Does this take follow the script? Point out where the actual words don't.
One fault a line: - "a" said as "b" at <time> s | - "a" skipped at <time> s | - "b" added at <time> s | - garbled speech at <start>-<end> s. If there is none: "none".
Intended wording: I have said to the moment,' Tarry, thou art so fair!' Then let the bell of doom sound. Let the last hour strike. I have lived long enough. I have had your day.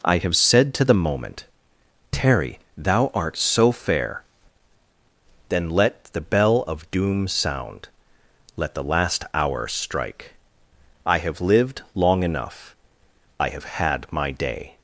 - "your" said as "my" at 14.1 s